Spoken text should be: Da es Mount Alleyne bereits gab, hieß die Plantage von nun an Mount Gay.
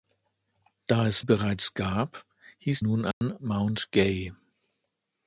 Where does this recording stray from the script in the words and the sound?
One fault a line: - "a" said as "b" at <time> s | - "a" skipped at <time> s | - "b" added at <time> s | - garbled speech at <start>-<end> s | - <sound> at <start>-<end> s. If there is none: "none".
- "Mount Alleyne" skipped at 1.2 s
- "die Plantage von" skipped at 2.8 s
- dropout at 3.1-3.2 s